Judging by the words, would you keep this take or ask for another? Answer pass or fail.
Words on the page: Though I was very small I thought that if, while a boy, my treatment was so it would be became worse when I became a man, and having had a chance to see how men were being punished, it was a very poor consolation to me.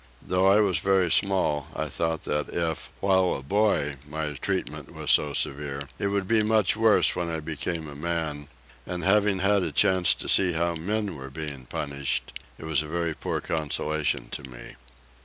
fail